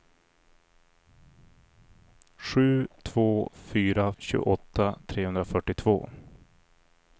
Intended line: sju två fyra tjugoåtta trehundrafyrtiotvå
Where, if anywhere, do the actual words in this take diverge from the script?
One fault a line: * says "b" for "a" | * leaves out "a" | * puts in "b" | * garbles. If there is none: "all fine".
all fine